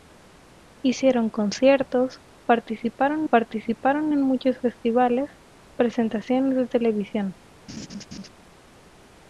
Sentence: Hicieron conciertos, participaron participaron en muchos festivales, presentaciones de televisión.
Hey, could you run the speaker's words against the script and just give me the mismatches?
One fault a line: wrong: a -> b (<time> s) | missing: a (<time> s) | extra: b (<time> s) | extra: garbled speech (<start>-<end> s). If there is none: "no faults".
no faults